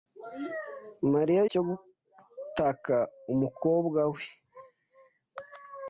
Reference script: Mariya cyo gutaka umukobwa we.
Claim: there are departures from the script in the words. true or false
false